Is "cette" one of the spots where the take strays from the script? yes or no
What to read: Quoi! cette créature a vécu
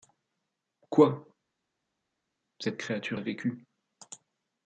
no